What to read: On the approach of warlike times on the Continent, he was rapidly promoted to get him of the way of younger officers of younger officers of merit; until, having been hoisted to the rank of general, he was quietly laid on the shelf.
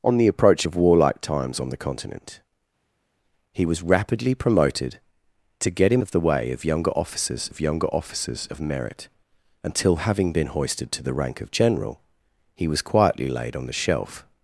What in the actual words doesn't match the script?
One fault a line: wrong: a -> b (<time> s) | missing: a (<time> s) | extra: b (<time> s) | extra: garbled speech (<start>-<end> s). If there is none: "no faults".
no faults